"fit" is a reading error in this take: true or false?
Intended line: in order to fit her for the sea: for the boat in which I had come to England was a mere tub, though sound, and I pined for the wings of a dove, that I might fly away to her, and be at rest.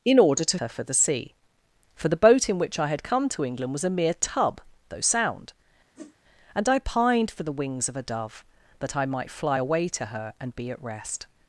true